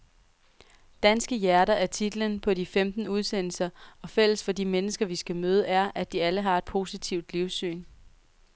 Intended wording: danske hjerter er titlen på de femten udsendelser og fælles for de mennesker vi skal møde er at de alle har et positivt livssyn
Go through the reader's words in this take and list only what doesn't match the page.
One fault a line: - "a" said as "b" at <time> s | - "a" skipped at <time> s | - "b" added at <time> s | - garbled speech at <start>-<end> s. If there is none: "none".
none